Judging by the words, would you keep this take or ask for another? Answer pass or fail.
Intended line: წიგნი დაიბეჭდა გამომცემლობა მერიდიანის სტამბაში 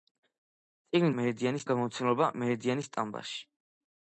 fail